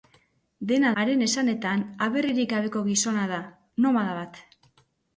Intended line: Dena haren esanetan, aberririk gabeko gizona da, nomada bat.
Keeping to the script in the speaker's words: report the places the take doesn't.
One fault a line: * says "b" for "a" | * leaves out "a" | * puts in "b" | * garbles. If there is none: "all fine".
all fine